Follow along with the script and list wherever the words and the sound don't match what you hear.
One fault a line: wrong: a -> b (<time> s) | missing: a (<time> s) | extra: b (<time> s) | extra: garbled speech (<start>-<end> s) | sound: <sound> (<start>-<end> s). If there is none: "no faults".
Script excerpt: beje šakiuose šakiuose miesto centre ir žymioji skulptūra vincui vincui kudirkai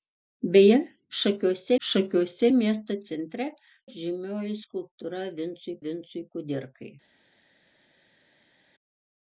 no faults